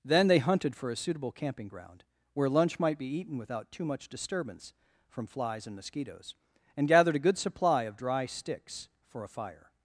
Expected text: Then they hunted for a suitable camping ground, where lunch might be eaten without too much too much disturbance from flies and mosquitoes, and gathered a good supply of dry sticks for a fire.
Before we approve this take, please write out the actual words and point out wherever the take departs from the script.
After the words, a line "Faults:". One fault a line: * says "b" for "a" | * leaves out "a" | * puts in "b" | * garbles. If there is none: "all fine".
Then they hunted for a suitable camping ground, where lunch might be eaten without too much disturbance from flies and mosquitoes, and gathered a good supply of dry sticks for a fire.
Faults:
* leaves out "too much"